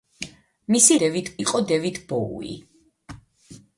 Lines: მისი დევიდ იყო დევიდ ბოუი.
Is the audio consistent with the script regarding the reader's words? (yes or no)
yes